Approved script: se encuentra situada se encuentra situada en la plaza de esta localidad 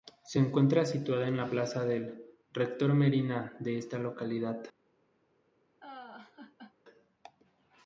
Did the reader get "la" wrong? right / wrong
wrong